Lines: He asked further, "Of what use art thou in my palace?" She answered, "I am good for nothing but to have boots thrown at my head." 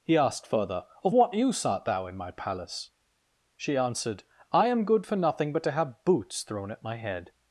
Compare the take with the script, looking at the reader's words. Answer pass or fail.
pass